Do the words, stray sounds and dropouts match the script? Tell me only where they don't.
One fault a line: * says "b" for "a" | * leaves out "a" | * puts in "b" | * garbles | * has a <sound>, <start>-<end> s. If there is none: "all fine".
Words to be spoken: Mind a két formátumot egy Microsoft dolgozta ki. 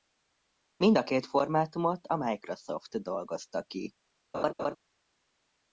* says "a" for "egy"
* has a laugh, 4.3-4.8 s